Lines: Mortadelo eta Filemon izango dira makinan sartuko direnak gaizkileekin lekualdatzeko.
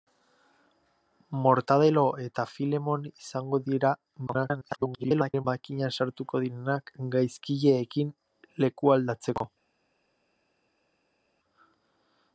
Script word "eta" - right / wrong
right